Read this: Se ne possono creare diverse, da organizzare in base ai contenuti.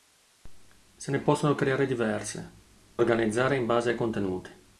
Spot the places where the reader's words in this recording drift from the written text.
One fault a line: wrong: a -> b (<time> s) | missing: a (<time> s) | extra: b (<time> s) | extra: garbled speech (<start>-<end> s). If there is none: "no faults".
missing: da (2.5 s)